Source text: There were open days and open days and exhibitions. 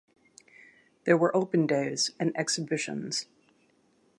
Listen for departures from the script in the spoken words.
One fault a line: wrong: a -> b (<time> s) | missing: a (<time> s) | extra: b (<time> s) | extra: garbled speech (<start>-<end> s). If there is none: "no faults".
missing: open days and (2.3 s)